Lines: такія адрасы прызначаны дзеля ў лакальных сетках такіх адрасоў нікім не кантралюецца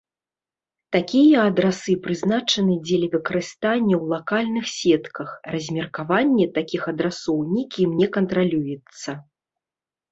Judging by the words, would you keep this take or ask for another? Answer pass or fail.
fail